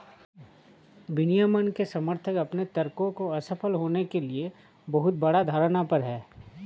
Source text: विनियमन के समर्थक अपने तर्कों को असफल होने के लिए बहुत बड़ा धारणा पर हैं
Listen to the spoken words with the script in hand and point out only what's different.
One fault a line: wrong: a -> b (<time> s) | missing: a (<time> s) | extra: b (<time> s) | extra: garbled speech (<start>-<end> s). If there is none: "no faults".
no faults